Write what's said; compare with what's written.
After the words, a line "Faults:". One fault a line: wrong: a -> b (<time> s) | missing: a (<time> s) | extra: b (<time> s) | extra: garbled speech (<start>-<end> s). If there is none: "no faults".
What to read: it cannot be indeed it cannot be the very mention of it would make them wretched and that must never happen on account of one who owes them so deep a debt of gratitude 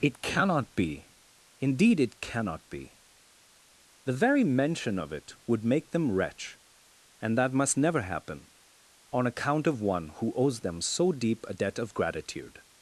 it cannot be indeed it cannot be the very mention of it would make them wretch and that must never happen on account of one who owes them so deep a debt of gratitude
Faults:
wrong: wretched -> wretch (6.1 s)